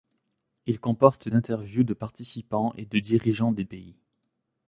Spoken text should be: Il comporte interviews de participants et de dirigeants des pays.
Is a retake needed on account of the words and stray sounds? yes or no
no